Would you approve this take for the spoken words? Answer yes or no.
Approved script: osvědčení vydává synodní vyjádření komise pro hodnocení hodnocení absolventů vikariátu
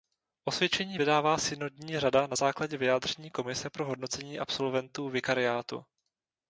no